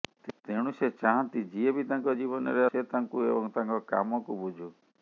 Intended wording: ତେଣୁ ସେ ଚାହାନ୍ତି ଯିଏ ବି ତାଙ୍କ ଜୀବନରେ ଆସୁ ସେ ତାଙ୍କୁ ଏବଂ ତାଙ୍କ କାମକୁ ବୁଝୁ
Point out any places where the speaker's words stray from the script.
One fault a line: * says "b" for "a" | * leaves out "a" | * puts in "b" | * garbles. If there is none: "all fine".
* leaves out "ଆସୁ"